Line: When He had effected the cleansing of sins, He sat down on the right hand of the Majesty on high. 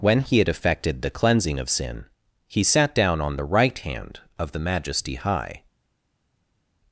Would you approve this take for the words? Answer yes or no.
no